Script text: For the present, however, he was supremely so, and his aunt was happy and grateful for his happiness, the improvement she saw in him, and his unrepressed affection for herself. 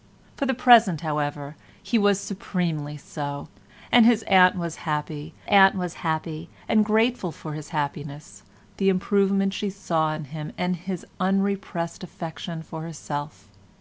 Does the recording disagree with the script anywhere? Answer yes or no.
yes